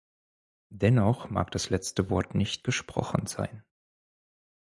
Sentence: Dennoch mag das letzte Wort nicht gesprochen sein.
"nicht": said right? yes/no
yes